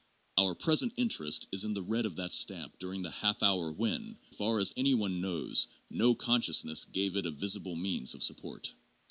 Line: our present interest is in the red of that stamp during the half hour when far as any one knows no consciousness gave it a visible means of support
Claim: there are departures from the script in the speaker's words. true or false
false